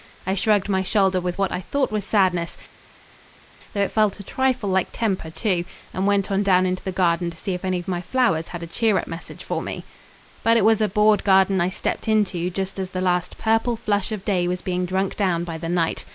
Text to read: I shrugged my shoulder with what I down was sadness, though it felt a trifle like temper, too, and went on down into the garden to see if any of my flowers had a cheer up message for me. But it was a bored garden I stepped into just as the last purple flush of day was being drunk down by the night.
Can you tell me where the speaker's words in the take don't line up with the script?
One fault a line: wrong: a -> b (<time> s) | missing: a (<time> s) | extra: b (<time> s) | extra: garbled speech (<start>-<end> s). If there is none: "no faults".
wrong: down -> thought (1.6 s)